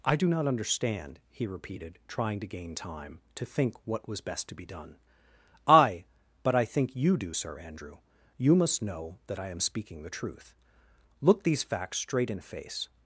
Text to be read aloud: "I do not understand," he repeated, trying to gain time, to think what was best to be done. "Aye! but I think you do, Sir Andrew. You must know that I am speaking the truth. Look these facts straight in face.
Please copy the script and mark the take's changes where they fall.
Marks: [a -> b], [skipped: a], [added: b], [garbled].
"I do not understand," he repeated, trying to gain time, to think what was best to be done. "Aye! but I think you do, Sir Andrew. You must know that I am speaking the truth. Look these facts straight in face.